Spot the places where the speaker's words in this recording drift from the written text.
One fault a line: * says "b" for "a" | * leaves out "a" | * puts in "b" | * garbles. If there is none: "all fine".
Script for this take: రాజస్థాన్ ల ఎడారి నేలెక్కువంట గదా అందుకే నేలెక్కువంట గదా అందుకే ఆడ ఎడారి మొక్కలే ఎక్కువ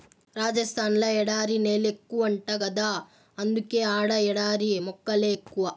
* leaves out "నేలెక్కువంట గదా అందుకే"